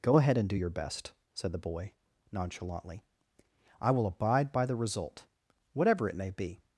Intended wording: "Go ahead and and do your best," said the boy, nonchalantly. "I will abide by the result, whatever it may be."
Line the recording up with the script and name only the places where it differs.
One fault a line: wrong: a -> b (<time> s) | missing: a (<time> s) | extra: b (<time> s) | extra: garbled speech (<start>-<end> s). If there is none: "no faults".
missing: and (0.5 s)